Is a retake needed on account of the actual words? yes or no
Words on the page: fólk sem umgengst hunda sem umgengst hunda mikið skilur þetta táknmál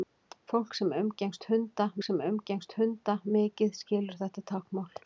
no